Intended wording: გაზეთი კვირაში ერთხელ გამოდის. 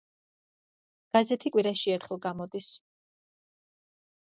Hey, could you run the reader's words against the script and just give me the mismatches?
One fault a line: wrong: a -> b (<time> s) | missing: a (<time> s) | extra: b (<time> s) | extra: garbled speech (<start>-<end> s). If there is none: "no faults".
no faults